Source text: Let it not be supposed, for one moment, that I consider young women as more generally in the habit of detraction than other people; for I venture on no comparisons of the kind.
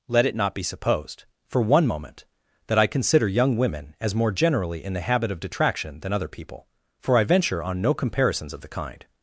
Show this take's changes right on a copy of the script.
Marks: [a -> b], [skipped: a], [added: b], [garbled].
Let it not be supposed, for one moment, that I consider young women as more generally in the habit of detraction than other people; for I venture on no comparisons of the kind.